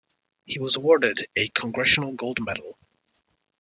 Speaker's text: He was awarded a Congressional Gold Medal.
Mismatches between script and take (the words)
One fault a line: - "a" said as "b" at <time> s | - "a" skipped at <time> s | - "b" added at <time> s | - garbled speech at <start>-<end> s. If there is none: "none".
none